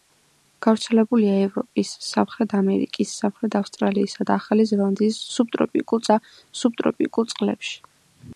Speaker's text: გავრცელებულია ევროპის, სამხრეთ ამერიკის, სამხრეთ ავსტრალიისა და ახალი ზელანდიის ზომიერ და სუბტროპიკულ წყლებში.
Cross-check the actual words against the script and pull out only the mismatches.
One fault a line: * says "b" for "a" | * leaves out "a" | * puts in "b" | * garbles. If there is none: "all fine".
* says "სუბტროპიკულ" for "ზომიერ"